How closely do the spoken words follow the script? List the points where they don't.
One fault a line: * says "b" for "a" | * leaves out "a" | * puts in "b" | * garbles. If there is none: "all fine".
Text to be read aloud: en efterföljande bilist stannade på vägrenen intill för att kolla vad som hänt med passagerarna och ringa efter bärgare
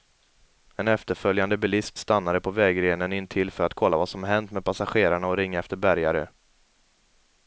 all fine